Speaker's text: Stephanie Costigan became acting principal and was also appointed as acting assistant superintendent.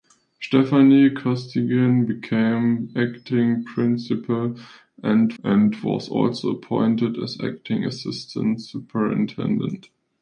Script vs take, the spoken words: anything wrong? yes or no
yes